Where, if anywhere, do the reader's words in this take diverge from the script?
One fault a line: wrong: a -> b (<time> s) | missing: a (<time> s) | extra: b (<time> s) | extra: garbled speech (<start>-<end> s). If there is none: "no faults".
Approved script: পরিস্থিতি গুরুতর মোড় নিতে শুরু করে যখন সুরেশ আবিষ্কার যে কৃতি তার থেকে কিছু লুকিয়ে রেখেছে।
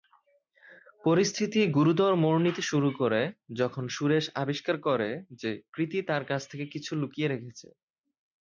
extra: করে (4.9 s)
extra: কাছ (6.3 s)